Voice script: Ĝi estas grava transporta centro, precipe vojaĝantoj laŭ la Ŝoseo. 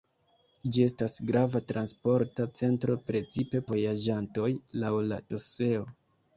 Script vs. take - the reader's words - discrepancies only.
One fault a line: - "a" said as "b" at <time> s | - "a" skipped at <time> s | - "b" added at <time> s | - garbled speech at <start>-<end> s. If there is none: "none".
none